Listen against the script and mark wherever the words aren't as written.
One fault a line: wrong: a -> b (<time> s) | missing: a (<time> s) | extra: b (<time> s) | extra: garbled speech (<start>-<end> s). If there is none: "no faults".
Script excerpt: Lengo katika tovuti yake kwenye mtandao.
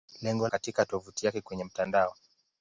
no faults